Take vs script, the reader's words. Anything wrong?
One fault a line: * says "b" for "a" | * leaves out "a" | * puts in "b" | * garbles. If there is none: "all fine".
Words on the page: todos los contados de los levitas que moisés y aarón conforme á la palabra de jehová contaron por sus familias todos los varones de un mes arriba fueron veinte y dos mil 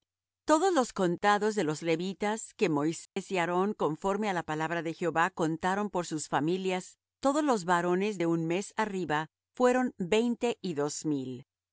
all fine